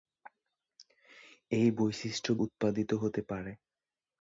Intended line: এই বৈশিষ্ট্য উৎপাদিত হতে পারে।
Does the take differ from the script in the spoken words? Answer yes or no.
no